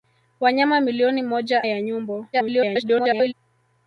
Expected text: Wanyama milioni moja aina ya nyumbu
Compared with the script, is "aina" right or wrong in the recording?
wrong